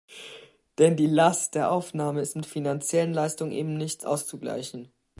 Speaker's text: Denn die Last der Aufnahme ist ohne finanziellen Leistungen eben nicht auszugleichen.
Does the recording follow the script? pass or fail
fail